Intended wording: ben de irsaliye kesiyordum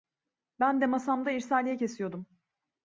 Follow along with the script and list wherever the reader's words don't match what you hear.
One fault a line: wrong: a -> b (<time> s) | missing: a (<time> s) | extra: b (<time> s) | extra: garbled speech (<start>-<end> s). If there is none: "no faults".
extra: masamda (0.9 s)